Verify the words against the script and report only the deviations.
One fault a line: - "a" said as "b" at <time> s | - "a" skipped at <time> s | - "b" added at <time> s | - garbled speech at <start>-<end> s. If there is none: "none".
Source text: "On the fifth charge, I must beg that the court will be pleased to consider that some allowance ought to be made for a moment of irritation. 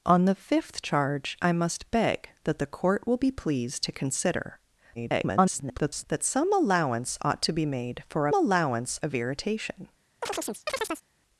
- garbled speech at 4.9-6.0 s
- "moment" said as "allowance" at 8.3 s